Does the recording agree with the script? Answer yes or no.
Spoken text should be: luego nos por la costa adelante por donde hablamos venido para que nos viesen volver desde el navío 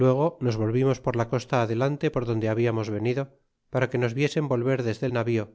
no